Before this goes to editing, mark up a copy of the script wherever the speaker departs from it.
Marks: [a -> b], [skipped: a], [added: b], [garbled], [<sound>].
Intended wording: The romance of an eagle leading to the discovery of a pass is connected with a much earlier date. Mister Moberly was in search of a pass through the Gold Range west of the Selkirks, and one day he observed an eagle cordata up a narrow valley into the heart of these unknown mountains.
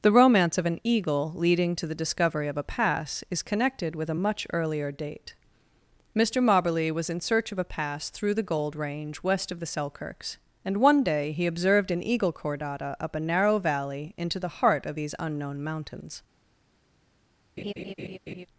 The romance of an eagle leading to the discovery of a pass is connected with a much earlier date. Mister Moberly was in search of a pass through the Gold Range west of the Selkirks, and one day he observed an eagle cordata up a narrow valley into the heart of these unknown mountains. [laugh]